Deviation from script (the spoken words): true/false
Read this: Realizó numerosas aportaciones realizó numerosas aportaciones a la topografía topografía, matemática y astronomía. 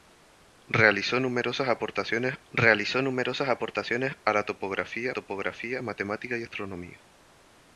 false